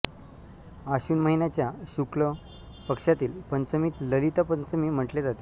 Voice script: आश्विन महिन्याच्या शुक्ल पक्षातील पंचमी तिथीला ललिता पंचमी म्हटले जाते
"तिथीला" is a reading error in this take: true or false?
true